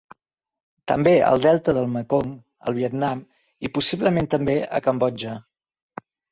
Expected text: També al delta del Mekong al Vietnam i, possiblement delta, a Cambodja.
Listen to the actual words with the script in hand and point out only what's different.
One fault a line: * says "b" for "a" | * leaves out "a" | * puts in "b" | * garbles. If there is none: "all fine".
* says "també" for "delta"